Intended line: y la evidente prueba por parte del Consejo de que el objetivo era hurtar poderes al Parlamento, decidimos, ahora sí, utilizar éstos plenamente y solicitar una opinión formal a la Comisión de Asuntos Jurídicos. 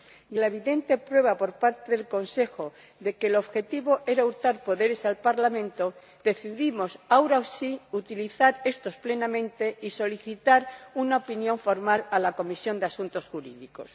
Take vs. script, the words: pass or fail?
pass